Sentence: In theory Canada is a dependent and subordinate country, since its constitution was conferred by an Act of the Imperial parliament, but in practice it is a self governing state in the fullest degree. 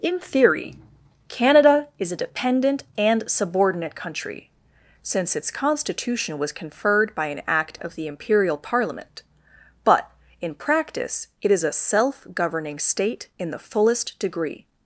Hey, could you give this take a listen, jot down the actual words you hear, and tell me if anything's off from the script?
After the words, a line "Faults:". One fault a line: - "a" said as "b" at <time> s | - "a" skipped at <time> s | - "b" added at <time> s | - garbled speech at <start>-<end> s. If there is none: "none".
In theory Canada is a dependent and subordinate country, since its constitution was conferred by an Act of the Imperial parliament, but in practice it is a self governing state in the fullest degree.
Faults:
none